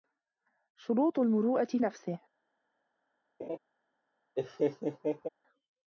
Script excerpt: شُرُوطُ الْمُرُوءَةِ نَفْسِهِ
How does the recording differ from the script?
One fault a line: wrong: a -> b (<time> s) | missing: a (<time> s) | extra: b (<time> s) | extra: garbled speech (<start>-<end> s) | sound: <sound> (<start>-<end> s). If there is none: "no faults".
sound: laugh (3.4-3.6 s)
sound: laugh (4.4-5.3 s)